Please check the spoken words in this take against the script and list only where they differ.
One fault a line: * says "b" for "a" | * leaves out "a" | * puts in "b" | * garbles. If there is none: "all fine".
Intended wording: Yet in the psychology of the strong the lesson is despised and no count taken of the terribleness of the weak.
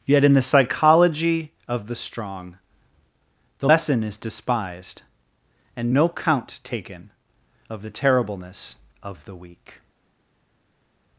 all fine